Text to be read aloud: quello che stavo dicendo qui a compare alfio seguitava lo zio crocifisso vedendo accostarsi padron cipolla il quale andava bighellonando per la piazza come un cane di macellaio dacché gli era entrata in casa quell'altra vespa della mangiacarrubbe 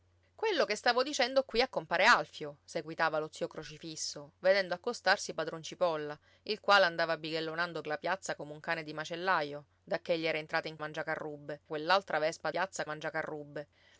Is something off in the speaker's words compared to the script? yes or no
yes